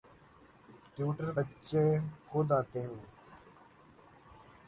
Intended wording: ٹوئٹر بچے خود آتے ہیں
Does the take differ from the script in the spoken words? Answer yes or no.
no